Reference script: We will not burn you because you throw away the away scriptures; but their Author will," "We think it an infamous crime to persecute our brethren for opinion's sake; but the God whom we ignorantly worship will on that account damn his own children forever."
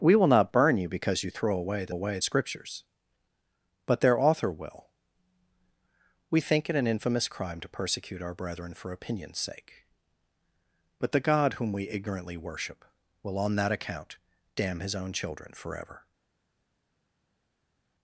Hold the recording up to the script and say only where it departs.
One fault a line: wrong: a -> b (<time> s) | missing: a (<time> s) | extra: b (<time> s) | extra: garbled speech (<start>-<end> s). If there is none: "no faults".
no faults